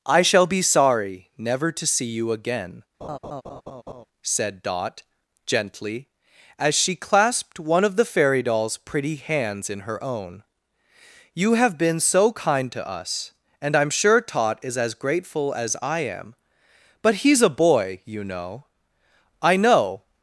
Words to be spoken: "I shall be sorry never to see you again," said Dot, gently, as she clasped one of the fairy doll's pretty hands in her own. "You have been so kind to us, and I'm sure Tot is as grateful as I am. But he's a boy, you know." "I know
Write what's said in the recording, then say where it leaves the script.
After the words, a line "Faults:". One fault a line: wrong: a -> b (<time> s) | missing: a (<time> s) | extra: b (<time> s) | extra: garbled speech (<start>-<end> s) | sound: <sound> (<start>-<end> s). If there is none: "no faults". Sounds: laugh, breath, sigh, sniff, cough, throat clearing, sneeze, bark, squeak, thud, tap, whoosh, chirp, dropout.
"I shall be sorry never to see you again," said Dot, gently, as she clasped one of the fairy doll's pretty hands in her own. "You have been so kind to us, and I'm sure Tot is as grateful as I am. But he's a boy, you know." "I know
Faults:
sound: laugh (3.0-4.0 s)